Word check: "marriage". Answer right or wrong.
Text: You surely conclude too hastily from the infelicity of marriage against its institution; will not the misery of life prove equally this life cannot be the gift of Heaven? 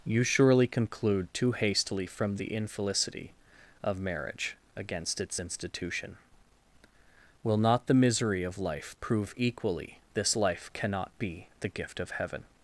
right